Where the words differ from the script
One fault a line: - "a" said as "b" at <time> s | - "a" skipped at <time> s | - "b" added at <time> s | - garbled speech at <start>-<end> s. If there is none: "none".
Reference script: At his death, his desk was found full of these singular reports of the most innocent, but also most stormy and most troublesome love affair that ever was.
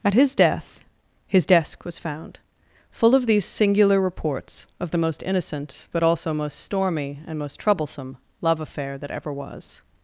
none